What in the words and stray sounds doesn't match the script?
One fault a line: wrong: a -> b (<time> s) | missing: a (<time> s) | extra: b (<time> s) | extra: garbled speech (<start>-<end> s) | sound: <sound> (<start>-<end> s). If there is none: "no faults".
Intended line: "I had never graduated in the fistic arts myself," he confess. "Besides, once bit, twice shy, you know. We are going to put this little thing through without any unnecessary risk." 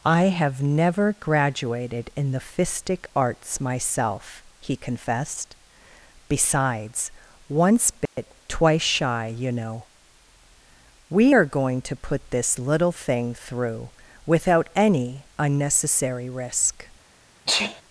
wrong: had -> have (0.3 s)
wrong: confess -> confessed (4.8 s)
sound: dropout (8.1-8.2 s)
sound: sneeze (17.5-17.8 s)